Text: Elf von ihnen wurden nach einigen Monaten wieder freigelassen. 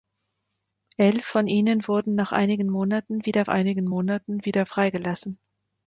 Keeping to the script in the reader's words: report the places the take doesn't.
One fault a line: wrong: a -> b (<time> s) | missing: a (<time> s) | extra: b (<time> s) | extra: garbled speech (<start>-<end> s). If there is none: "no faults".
extra: einigen Monaten wieder (3.5 s)